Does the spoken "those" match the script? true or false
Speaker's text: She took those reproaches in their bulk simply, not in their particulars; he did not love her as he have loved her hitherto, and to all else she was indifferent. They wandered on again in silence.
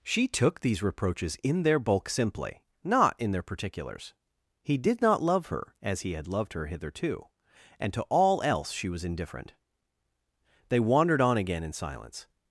false